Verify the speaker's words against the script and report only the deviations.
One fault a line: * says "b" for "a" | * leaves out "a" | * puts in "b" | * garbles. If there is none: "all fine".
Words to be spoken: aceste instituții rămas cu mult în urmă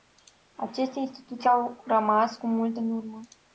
* puts in "au"